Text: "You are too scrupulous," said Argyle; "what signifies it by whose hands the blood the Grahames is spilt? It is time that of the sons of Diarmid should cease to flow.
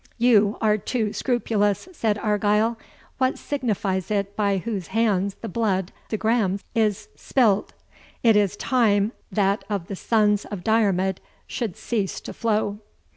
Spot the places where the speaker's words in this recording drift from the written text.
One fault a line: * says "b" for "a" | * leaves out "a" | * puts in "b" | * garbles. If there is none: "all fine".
all fine